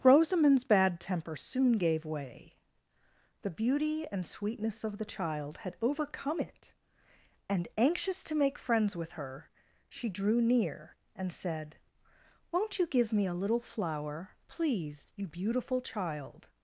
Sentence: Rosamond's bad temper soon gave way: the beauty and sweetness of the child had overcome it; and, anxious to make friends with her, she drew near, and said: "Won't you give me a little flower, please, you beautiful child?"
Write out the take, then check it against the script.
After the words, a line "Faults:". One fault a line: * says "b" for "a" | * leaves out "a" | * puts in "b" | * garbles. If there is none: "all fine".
Rosamond's bad temper soon gave way: the beauty and sweetness of the child had overcome it; and, anxious to make friends with her, she drew near, and said: "Won't you give me a little flower, please, you beautiful child?"
Faults:
all fine